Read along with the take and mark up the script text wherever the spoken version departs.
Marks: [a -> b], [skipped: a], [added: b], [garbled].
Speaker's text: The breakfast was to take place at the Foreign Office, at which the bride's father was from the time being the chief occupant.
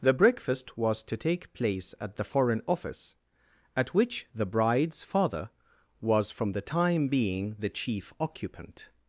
The breakfast was to take place at the Foreign Office, at which the bride's father was from the time being the chief occupant.